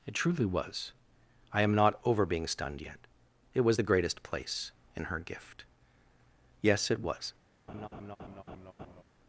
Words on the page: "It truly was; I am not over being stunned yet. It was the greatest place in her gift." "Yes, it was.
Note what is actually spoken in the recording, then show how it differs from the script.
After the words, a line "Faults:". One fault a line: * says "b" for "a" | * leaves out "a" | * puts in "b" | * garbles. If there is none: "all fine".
"It truly was; I am not over being stunned yet. It was the greatest place in her gift." "Yes, it was.
Faults:
all fine